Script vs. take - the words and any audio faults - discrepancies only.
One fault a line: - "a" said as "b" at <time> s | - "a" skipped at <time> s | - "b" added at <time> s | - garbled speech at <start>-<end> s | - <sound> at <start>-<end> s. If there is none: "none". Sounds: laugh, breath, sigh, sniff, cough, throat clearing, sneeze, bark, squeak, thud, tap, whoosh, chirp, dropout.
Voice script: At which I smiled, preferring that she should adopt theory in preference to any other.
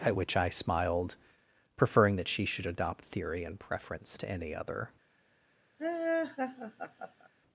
- laugh at 5.8-7.3 s